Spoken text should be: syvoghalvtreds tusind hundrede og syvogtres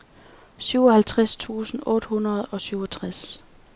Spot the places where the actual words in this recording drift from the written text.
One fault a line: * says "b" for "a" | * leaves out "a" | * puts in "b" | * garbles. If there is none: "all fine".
* puts in "otte"